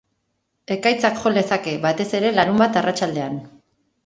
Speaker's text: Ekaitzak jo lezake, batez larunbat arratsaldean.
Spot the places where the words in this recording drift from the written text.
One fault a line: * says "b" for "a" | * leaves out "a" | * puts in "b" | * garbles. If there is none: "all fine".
* puts in "ere"